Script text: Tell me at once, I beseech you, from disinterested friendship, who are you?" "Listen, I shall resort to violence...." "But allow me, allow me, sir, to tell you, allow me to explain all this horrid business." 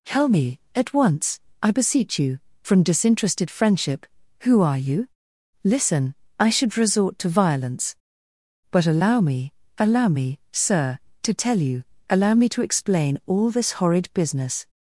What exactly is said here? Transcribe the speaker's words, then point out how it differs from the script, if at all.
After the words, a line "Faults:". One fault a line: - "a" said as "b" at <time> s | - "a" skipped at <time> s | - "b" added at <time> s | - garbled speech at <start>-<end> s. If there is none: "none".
Tell me at once, I beseech you, from disinterested friendship, who are you?" "Listen, I should resort to violence...." "But allow me, allow me, sir, to tell you, allow me to explain all this horrid business."
Faults:
- "shall" said as "should" at 6.5 s